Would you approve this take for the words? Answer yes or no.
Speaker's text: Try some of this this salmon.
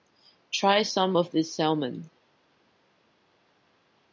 no